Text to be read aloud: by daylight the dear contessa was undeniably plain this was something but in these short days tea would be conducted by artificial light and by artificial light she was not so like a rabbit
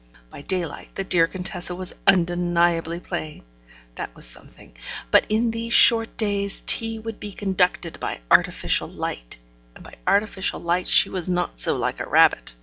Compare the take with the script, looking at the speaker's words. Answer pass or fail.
fail